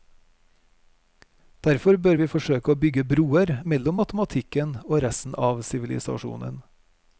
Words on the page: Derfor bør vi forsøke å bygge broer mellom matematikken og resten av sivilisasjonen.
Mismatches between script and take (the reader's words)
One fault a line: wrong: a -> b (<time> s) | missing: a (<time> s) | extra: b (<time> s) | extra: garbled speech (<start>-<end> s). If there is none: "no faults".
no faults